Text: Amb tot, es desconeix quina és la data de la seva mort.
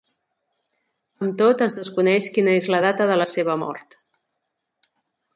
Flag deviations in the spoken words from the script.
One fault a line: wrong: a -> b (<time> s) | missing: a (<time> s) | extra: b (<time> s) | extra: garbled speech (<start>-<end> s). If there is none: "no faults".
no faults